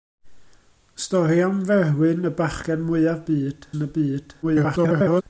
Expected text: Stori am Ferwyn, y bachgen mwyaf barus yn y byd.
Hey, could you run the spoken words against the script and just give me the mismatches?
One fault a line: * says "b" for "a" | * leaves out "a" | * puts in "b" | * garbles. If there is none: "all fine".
* says "byd" for "barus"
* garbles